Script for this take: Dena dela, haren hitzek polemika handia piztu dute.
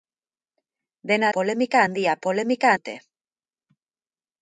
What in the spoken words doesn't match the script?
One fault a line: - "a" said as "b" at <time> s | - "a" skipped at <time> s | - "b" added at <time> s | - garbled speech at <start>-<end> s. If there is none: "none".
- "dela haren hitzek" skipped at 1.3 s
- "piztu" said as "polemika" at 2.3 s